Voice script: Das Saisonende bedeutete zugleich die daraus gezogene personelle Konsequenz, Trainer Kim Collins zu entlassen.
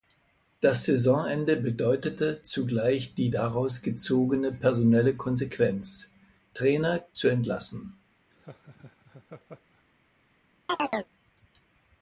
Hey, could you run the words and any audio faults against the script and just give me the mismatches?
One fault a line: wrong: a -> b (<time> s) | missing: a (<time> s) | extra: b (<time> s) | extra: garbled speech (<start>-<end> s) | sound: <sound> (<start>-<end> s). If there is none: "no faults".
missing: Kim Collins (7.0 s)
sound: laugh (8.3-9.8 s)
sound: chirp (10.7-11.1 s)